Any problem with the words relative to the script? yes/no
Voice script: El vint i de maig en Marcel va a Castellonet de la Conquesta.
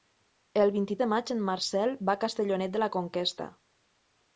no